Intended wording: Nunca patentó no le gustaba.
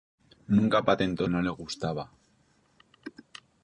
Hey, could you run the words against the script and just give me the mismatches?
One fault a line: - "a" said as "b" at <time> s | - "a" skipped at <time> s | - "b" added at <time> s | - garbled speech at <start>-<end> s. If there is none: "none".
none